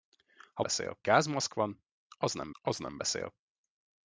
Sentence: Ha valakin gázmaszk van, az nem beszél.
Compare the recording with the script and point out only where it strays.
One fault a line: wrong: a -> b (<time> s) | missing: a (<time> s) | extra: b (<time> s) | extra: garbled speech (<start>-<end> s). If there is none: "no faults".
wrong: valakin -> beszél (0.6 s)
extra: az nem (2.6 s)